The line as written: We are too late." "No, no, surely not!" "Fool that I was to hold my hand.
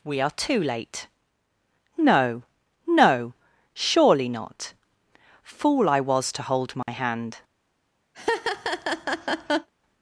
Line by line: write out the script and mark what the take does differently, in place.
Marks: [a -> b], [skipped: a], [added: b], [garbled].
We are too late." "No, no, surely not!" "Fool [skipped: that] I was to hold my hand.